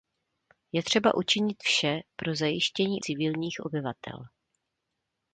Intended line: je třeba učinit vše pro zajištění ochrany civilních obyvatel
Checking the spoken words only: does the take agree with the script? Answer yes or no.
no